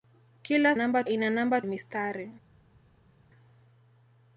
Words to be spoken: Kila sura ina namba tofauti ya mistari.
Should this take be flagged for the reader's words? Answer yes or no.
yes